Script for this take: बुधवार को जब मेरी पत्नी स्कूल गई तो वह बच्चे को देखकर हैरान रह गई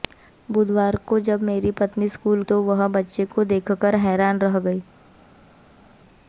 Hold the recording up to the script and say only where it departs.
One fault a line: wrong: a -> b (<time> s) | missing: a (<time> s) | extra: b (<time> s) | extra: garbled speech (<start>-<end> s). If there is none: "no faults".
missing: गई (2.4 s)